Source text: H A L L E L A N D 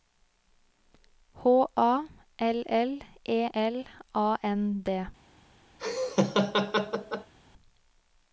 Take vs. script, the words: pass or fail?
pass